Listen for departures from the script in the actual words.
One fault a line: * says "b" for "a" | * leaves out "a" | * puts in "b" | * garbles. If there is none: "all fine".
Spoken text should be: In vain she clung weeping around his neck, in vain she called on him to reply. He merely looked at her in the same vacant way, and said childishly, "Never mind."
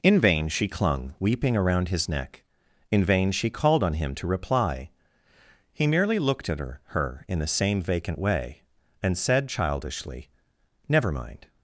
* puts in "her"